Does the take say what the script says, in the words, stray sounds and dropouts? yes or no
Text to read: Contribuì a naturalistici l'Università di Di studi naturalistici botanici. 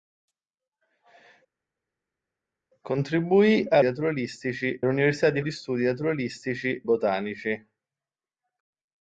yes